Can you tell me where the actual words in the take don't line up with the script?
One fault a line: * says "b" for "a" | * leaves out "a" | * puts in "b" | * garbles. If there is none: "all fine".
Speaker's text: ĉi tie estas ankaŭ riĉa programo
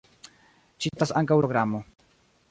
* leaves out "tie"
* leaves out "riĉa"